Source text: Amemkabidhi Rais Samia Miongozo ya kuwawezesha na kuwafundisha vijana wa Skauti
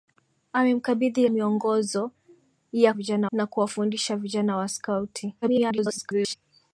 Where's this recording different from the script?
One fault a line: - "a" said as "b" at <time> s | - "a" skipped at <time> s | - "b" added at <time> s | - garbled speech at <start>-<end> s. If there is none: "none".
- "Rais Samia" skipped at 1.3 s
- "kuwawezesha" said as "vijana" at 2.9 s
- garbled speech at 5.4-6.4 s